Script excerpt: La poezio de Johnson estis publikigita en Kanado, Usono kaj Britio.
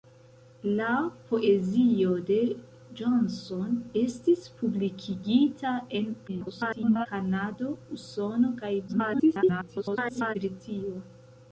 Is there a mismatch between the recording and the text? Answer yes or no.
yes